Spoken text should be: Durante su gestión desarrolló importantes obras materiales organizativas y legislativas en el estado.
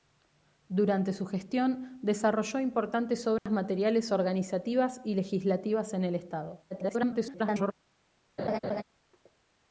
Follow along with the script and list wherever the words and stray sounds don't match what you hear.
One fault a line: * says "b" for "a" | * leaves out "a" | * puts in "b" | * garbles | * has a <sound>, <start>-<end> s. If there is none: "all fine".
* has a dropout, 3.4-3.5 s
* garbles
* has a laugh, 8.4-8.8 s